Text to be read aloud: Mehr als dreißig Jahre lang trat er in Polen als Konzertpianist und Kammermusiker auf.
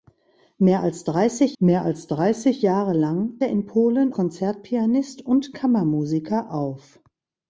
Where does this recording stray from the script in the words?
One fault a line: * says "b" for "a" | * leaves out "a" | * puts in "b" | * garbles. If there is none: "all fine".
* puts in "mehr als dreißig"
* leaves out "trat"
* leaves out "als"